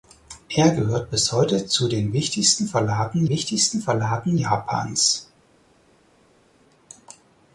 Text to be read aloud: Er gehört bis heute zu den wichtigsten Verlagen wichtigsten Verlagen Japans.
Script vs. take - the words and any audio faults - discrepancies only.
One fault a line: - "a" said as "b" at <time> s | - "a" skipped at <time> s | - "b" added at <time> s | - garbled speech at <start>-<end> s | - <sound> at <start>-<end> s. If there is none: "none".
none